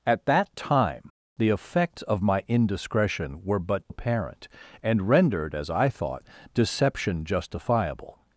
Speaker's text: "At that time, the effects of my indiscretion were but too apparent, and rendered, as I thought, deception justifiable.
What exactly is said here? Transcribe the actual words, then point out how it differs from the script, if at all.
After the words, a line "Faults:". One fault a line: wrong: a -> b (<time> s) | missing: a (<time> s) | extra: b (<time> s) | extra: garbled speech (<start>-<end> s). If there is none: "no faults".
"At that time, the effects of my indiscretion were but apparent, and rendered, as I thought, deception justifiable.
Faults:
missing: too (3.8 s)